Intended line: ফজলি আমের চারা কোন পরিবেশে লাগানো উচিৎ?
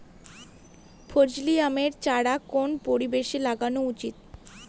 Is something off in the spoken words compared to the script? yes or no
no